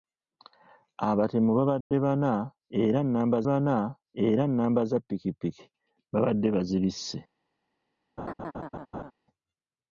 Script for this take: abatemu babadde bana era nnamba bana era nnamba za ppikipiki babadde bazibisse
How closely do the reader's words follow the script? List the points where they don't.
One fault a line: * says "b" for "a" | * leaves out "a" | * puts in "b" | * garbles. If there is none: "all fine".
all fine